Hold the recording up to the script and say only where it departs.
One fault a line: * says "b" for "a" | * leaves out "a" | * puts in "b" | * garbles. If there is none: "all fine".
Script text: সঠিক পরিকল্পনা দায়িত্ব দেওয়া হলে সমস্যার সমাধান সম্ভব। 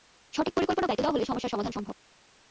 all fine